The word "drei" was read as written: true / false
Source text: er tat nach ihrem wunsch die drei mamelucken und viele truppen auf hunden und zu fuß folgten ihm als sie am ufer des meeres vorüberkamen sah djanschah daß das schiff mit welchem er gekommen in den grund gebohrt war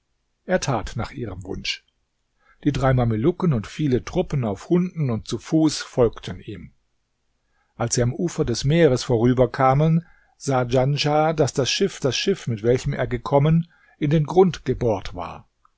true